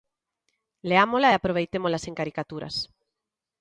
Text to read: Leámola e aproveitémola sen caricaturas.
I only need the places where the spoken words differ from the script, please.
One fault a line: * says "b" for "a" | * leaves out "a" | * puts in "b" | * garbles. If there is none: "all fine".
all fine